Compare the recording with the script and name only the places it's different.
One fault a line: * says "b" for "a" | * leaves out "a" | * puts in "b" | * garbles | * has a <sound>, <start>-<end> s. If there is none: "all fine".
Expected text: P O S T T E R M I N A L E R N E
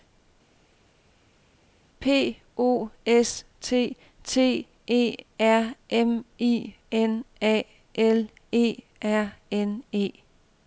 all fine